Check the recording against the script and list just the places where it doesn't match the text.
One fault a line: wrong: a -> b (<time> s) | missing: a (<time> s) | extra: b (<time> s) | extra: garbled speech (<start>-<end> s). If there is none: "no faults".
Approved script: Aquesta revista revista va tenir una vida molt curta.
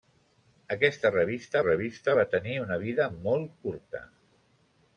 no faults